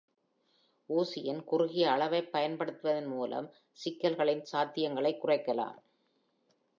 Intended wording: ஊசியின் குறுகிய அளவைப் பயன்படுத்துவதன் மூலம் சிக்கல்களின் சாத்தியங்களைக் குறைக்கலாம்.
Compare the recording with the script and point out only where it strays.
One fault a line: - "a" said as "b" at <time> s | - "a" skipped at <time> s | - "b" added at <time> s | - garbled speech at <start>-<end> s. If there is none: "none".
none